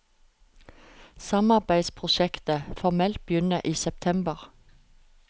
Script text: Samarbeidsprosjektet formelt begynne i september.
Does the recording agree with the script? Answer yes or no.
yes